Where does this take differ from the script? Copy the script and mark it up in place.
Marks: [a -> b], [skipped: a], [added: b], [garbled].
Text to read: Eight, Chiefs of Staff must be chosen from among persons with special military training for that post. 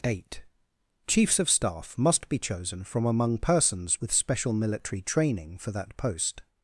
Eight, Chiefs of Staff must be chosen from among persons with special military training for that post.